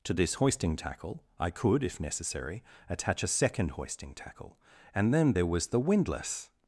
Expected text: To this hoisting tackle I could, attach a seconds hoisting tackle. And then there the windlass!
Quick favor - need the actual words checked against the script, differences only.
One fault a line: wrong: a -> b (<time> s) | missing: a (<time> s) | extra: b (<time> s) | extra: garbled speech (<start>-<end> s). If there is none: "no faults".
extra: if necessary (1.8 s)
wrong: seconds -> second (3.3 s)
extra: was (5.5 s)